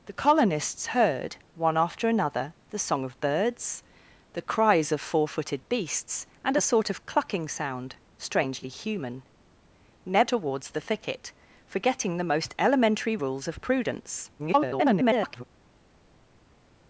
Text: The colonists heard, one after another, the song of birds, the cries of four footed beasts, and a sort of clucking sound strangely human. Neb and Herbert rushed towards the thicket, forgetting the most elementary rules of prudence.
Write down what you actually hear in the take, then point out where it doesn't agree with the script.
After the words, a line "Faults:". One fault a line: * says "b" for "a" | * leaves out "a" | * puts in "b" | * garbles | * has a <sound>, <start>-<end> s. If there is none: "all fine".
The colonists heard, one after another, the song of birds, the cries of four footed beasts, and a sort of clucking sound strangely human. Neb towards the thicket, forgetting the most elementary rules of prudence. [garbled]
Faults:
* leaves out "and Herbert rushed"
* garbles